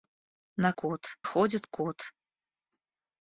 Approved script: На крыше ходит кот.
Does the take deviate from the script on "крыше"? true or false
true